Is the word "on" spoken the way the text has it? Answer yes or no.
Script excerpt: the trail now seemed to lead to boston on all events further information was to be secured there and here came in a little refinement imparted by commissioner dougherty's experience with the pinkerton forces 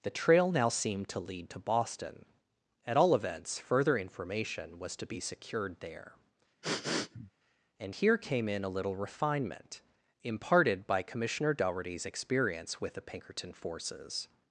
no